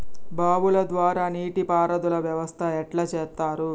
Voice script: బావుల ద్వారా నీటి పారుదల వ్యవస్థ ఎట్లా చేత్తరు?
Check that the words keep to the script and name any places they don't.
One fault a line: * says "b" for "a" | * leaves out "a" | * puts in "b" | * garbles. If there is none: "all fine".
all fine